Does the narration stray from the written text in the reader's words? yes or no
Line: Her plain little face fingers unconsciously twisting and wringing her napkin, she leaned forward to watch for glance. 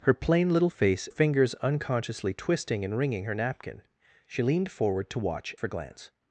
no